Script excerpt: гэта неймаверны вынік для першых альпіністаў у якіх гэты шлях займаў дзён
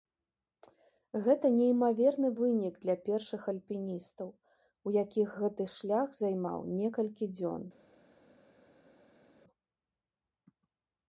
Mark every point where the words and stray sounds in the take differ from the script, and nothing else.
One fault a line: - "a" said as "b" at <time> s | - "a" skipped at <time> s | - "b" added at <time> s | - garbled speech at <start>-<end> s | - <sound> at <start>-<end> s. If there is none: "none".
- "некалькі" added at 6.8 s